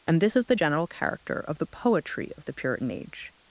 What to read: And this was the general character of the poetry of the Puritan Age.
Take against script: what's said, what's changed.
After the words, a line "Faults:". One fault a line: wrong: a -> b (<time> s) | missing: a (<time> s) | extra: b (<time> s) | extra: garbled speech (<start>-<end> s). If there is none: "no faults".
And this is the general character of the poetry of the Puritan Age.
Faults:
wrong: was -> is (0.3 s)